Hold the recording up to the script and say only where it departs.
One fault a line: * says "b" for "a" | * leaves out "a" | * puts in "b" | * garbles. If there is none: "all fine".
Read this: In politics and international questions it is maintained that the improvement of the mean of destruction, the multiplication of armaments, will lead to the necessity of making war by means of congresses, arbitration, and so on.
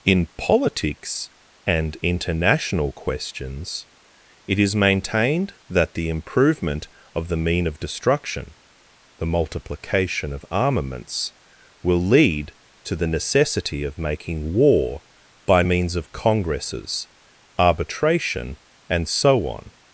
all fine